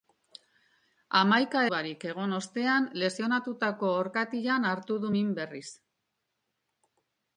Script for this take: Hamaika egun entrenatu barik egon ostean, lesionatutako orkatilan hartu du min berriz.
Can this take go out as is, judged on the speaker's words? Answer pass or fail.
fail